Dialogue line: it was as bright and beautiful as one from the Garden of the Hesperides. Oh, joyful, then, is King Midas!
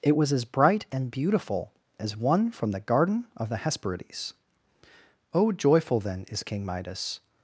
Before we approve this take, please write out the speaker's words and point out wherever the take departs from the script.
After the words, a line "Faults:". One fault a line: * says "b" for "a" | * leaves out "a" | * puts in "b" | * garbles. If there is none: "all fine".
it was as bright and beautiful as one from the Garden of the Hesperides. Oh, joyful, then, is King Midas!
Faults:
all fine